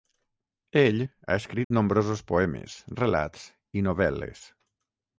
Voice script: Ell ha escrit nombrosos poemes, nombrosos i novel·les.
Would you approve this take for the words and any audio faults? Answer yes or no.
no